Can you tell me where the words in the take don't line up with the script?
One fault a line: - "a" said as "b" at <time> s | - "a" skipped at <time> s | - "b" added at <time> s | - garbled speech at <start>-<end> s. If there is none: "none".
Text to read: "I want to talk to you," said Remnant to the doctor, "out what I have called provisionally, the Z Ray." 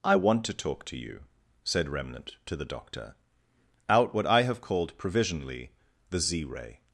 none